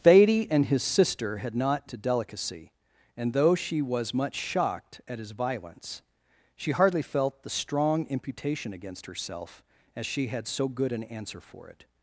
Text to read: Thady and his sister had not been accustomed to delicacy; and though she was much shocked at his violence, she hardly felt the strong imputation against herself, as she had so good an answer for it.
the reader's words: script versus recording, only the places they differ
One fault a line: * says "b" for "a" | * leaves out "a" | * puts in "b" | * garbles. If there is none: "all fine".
* leaves out "been accustomed"